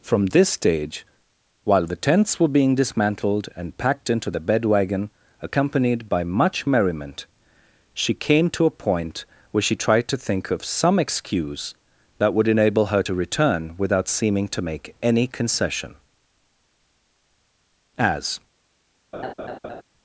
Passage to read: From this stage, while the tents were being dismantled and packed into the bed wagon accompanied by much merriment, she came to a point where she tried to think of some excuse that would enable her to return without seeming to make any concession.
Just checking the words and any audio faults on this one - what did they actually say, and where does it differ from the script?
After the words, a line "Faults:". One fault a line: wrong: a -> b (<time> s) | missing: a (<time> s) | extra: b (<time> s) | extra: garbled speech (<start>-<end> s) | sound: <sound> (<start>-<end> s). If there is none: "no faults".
From this stage, while the tents were being dismantled and packed into the bed wagon accompanied by much merriment, she came to a point where she tried to think of some excuse that would enable her to return without seeming to make any concession. As
Faults:
extra: As (18.0 s)
sound: laugh (19.1-19.8 s)